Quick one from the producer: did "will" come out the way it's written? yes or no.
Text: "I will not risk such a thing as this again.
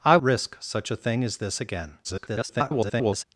no